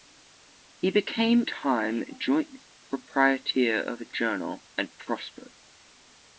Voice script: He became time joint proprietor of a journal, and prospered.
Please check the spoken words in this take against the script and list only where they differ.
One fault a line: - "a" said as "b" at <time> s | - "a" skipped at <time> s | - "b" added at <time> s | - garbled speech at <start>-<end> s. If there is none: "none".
none